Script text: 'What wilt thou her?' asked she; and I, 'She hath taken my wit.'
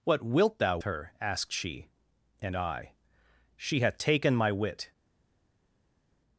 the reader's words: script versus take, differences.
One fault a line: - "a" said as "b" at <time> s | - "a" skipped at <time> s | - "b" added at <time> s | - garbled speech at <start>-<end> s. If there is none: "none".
none